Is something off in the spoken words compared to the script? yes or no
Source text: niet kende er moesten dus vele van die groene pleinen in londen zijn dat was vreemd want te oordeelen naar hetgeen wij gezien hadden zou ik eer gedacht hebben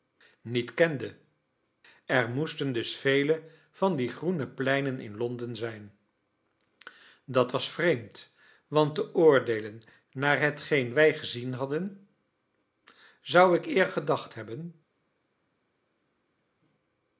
no